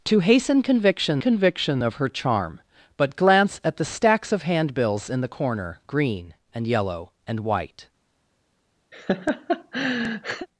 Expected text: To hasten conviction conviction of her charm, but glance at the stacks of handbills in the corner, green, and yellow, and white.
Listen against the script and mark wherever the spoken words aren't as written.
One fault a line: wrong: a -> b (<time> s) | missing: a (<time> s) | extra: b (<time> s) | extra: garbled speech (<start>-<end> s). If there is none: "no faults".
no faults